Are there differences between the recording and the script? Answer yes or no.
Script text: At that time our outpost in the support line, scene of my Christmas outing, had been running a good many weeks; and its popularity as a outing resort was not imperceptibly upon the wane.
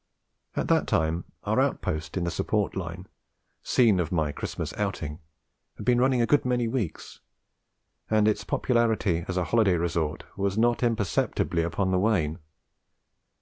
yes